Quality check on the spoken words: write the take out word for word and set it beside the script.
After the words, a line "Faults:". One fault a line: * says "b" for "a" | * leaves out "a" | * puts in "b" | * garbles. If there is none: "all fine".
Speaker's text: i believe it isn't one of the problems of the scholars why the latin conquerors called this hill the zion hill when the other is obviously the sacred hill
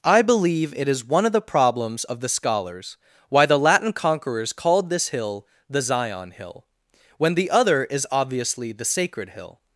i believe it is one of the problems of the scholars why the latin conquerors called this hill the zion hill when the other is obviously the sacred hill
Faults:
* says "is" for "isn't"